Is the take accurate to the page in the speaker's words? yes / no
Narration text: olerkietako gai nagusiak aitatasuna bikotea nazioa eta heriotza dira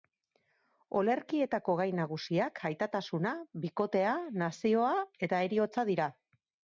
yes